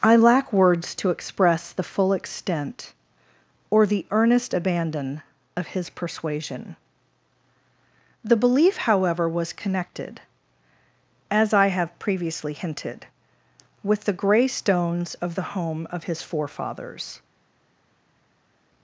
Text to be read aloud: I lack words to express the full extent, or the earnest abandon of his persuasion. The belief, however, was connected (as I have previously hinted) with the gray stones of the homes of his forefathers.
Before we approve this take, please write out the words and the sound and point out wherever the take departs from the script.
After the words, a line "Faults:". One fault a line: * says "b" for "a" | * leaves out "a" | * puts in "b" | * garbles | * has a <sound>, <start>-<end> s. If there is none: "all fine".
I lack words to express the full extent, or the earnest abandon of his persuasion. The belief, however, was connected (as I have previously hinted) with the gray stones of the home of his forefathers.
Faults:
* says "home" for "homes"